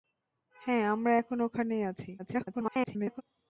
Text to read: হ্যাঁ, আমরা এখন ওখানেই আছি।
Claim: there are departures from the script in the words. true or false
true